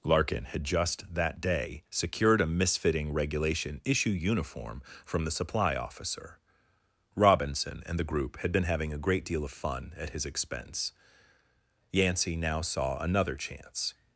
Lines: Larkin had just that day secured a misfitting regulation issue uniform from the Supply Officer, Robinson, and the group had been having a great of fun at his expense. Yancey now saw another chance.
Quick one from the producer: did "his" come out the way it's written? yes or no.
yes